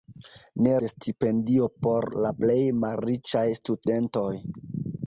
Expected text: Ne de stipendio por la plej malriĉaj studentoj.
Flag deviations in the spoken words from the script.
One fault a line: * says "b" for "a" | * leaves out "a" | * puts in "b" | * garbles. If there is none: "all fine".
all fine